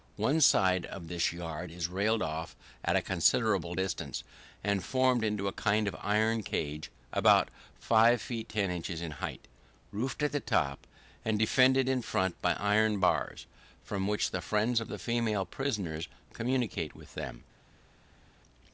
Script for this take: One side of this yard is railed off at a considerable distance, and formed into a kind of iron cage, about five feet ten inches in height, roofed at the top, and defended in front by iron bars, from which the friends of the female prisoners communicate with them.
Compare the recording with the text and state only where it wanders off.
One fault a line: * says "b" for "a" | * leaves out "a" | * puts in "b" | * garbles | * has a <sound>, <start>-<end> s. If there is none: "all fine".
all fine